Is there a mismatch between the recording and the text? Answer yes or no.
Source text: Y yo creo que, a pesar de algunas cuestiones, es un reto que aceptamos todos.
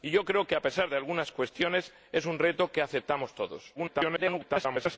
yes